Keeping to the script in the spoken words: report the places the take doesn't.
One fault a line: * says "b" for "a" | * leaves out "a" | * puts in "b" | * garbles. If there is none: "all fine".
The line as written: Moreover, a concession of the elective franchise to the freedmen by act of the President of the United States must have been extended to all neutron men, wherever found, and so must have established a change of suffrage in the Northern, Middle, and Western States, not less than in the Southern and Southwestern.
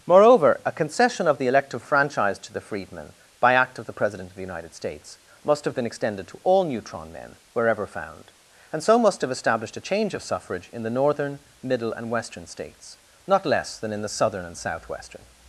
all fine